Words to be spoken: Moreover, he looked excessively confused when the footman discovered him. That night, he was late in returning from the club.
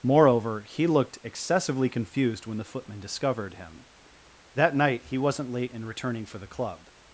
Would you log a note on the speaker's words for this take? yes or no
yes